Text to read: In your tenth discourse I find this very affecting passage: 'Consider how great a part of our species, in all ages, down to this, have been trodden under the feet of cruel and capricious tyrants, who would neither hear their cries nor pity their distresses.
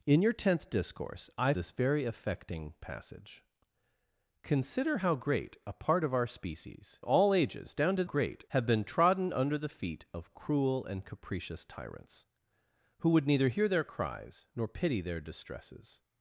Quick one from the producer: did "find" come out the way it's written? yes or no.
no